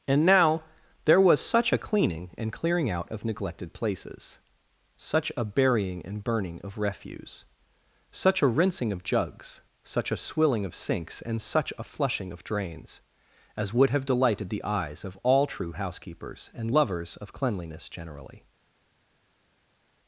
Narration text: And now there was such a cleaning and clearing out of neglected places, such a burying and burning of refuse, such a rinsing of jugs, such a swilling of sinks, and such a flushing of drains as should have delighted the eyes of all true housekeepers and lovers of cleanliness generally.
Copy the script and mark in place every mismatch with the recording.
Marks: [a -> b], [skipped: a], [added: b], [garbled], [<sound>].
And now there was such a cleaning and clearing out of neglected places, such a burying and burning of refuse, such a rinsing of jugs, such a swilling of sinks, and such a flushing of drains as [should -> would] have delighted the eyes of all true housekeepers and lovers of cleanliness generally.